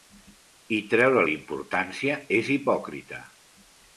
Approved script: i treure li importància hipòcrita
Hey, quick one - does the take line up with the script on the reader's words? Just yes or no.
no